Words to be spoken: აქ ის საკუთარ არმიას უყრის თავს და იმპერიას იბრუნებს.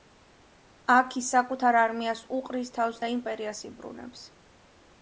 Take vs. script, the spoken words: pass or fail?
pass